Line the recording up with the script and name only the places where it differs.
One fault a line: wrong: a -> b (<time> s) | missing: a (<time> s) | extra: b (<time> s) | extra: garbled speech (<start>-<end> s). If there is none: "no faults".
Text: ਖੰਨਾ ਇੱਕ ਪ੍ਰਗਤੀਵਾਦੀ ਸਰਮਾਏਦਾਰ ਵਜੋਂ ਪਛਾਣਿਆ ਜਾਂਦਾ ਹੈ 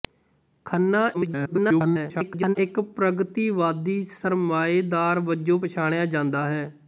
extra: garbled speech (1.1-2.6 s)